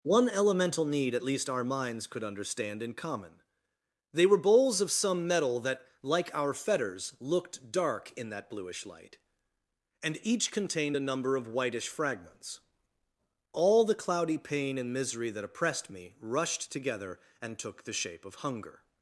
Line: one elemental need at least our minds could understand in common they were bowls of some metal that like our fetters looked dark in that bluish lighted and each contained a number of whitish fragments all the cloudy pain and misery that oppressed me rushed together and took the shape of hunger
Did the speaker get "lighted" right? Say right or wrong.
wrong